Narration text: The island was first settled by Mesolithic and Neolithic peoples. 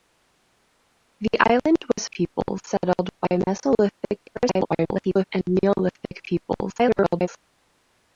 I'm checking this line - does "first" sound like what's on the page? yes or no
no